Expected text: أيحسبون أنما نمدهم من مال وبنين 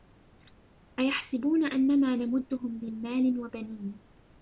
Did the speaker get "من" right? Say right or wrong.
right